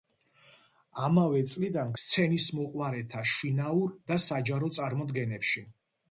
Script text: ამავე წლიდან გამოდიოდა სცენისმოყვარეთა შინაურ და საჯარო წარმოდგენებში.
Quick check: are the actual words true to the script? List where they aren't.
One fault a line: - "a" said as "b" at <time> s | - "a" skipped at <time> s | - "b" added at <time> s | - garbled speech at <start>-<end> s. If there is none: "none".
- "გამოდიოდა" skipped at 1.9 s